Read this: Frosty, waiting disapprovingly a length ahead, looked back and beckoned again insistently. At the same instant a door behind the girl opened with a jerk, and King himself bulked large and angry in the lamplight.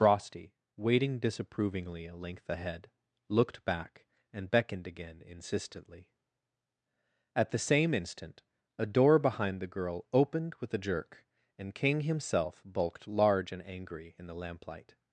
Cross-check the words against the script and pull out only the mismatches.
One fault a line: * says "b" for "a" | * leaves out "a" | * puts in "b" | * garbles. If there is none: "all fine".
all fine